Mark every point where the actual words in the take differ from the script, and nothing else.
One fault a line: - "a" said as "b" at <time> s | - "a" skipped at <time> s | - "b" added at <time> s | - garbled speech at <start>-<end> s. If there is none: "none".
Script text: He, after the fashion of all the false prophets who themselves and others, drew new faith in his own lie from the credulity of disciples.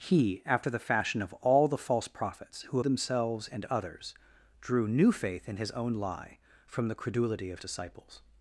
none